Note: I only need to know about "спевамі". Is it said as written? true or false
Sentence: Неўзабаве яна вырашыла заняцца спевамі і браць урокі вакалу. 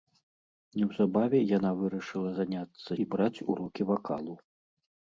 false